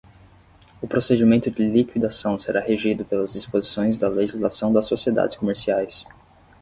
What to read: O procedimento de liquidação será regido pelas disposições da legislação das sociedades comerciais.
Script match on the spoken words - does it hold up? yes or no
yes